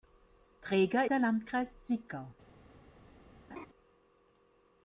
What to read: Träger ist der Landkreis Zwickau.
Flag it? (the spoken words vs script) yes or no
yes